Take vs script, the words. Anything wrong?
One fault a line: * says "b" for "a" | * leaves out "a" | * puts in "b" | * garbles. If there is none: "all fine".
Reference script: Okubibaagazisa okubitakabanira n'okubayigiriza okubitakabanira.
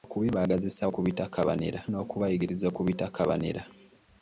all fine